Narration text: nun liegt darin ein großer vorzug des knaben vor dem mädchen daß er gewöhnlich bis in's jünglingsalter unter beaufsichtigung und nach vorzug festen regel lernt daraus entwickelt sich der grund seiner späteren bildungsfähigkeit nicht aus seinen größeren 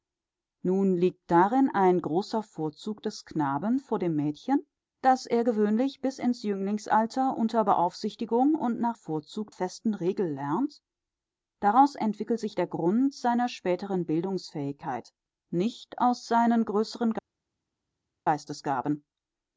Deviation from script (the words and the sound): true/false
false